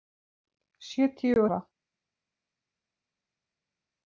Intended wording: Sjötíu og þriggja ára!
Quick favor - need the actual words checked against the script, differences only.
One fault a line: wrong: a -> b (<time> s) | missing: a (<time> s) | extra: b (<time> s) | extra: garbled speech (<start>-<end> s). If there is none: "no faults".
missing: og þriggja (1.4 s)